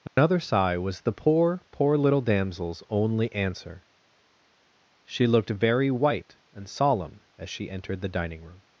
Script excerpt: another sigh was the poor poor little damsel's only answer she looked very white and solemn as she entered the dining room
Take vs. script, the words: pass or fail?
pass